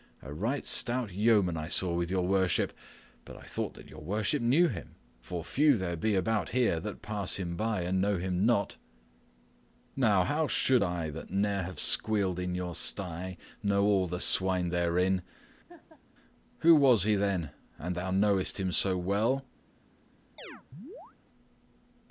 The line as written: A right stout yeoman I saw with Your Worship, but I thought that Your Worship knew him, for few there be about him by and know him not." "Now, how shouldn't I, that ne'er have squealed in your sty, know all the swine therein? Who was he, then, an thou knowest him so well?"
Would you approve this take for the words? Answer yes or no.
no